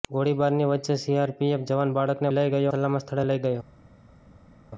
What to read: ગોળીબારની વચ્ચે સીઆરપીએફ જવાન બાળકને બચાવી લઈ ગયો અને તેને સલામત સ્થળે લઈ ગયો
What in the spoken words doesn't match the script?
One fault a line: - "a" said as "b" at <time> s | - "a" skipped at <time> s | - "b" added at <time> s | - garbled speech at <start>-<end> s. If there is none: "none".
- "બચાવી" skipped at 2.3 s
- "અને તેને" skipped at 2.7 s